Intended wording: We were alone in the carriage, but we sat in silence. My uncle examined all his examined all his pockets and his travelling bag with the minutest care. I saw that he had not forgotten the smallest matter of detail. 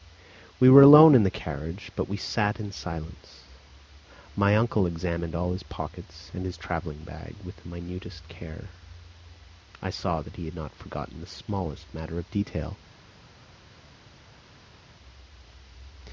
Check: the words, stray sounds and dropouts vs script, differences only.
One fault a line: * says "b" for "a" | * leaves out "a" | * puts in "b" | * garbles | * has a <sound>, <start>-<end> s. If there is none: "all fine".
* leaves out "examined all his"